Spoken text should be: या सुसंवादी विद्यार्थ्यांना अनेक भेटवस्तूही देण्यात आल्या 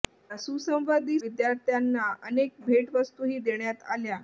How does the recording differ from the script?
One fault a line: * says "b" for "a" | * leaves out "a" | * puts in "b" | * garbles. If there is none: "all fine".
all fine